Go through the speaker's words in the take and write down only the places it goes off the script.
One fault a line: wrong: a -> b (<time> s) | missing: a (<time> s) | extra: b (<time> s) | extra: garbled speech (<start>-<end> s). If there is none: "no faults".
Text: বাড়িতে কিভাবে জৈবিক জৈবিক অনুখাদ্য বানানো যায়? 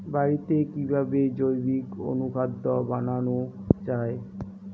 missing: জৈবিক (1.9 s)